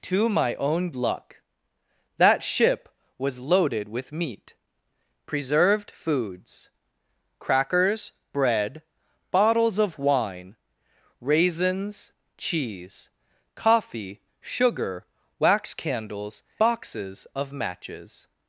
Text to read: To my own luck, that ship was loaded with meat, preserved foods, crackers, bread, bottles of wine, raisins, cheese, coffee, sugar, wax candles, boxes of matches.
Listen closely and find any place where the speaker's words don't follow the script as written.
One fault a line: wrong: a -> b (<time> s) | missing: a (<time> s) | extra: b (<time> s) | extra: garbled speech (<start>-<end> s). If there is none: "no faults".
no faults